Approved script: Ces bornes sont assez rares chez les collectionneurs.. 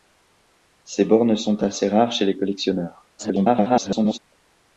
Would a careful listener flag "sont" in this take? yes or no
no